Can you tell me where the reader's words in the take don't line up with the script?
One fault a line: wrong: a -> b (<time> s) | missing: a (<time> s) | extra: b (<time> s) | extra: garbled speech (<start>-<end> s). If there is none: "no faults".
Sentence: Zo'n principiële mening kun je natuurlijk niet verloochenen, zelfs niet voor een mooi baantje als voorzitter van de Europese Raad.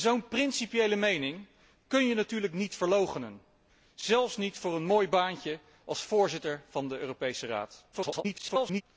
extra: garbled speech (7.9-8.8 s)